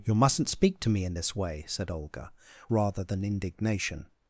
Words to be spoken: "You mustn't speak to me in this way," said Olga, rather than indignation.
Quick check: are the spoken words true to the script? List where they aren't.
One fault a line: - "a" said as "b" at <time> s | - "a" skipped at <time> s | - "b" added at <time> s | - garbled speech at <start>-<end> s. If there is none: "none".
none